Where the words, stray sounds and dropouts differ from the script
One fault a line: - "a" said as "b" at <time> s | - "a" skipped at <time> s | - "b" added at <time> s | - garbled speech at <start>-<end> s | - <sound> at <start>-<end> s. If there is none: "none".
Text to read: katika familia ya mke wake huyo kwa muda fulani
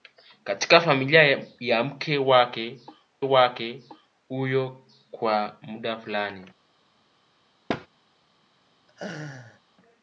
- "wake" added at 3.2 s
- thud at 7.7-7.9 s
- laugh at 8.9-9.6 s